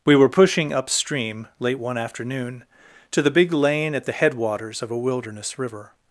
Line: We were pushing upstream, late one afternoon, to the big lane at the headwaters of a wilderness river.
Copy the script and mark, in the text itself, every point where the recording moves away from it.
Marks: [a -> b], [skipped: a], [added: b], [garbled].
We were pushing upstream, late one afternoon, to the big lane at the headwaters of a wilderness river.